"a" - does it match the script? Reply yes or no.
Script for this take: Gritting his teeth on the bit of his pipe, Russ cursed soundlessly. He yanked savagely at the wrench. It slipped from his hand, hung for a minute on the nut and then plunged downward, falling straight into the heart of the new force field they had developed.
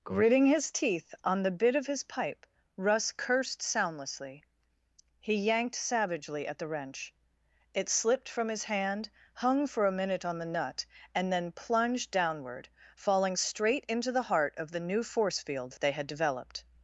yes